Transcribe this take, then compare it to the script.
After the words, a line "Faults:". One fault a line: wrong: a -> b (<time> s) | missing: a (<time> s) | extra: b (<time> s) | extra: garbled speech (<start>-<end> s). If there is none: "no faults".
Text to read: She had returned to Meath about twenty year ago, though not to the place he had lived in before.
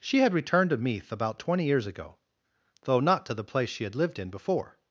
She had returned to Meath about twenty years ago, though not to the place she had lived in before.
Faults:
wrong: year -> years (1.6 s)
wrong: he -> she (3.7 s)